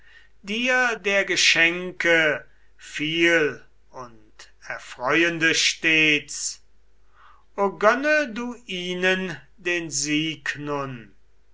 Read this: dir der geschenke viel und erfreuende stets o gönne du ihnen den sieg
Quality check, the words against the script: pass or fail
pass